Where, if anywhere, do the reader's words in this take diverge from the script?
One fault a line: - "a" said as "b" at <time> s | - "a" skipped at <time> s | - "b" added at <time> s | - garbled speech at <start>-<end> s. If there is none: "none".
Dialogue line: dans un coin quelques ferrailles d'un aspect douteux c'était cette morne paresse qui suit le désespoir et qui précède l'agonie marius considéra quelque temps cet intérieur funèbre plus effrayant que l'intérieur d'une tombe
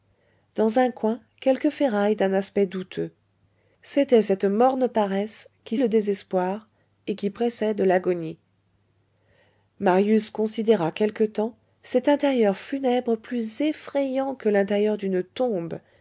- "suit" skipped at 5.8 s